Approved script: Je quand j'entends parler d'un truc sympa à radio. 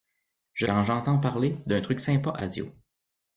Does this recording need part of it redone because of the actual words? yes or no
no